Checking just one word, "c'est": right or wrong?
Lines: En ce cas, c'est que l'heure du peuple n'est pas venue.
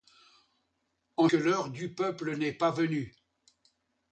wrong